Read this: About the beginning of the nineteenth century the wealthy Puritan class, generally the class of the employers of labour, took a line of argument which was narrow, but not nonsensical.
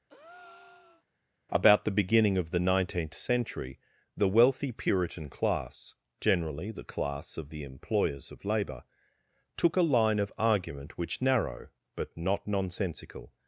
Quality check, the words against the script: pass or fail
fail